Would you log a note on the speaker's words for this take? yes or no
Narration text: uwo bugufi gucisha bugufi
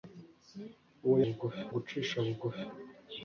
no